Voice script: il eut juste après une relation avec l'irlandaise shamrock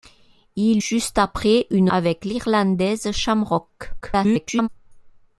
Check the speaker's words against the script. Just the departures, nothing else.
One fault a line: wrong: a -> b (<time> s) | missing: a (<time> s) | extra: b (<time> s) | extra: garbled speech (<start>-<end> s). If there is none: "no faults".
missing: eut (0.8 s)
missing: relation (1.9 s)
extra: garbled speech (4.0-4.7 s)